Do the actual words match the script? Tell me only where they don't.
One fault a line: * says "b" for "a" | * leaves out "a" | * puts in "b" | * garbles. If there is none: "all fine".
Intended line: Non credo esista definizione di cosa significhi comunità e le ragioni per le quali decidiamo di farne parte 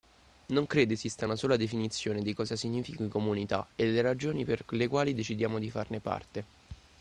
* puts in "una sola"